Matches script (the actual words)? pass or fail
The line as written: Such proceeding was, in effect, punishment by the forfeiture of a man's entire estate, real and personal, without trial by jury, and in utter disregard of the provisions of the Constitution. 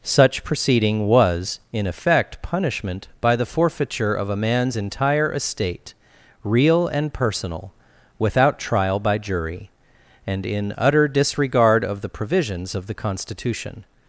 pass